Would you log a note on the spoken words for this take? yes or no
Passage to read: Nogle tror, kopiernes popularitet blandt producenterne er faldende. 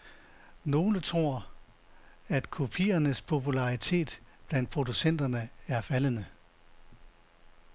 yes